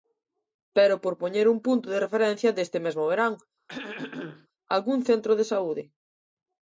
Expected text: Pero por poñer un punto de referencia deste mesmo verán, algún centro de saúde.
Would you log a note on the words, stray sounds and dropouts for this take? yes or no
yes